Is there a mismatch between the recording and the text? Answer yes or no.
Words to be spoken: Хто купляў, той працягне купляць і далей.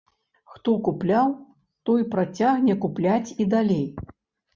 no